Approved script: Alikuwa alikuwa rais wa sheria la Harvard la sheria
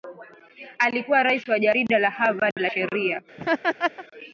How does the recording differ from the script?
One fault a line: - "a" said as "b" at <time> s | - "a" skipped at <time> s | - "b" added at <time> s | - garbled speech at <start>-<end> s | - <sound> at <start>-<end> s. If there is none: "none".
- "alikuwa" skipped at 1.2 s
- "sheria" said as "jarida" at 1.6 s
- dropout at 2.5-2.6 s
- laugh at 3.4-4.1 s